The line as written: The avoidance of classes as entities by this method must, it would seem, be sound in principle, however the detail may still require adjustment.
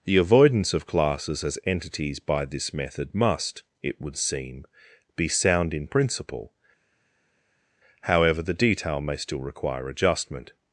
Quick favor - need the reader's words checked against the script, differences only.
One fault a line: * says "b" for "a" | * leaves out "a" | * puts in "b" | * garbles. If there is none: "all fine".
all fine